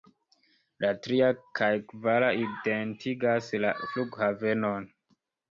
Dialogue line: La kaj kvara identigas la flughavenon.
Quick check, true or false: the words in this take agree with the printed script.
false